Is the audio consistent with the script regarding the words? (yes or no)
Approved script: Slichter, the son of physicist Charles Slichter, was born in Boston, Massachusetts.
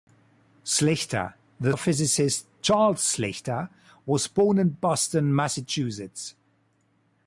no